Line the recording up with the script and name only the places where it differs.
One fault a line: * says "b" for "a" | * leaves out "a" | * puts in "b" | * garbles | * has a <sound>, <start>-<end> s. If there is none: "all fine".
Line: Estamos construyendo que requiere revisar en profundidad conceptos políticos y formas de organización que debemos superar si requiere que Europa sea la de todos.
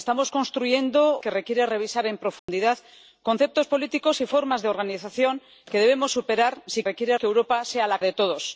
* has a dropout, 2.4-2.5 s